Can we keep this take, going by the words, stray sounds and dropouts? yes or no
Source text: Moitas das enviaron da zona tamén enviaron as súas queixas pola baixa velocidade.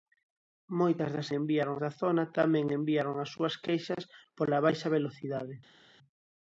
yes